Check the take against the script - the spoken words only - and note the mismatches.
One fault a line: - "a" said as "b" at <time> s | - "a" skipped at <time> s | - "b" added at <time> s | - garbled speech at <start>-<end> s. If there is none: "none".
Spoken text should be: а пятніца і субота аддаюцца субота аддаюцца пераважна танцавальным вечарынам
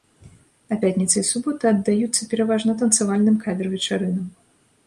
- "субота аддаюцца" skipped at 2.3 s
- "кавер" added at 3.5 s